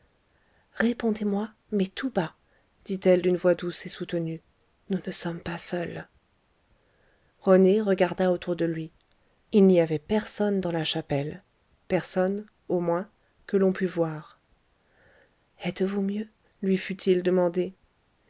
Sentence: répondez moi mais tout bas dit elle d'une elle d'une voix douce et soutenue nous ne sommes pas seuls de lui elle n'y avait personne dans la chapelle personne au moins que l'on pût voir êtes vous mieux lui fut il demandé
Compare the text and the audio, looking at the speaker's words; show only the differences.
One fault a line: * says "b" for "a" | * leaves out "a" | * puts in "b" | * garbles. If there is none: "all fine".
* leaves out "elle d'une"
* puts in "rené regarda autour"
* says "il" for "elle"